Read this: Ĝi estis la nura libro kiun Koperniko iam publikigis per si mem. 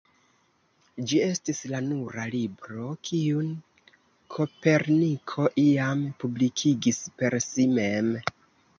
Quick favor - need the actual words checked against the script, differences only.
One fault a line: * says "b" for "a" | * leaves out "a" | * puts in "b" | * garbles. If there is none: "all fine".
all fine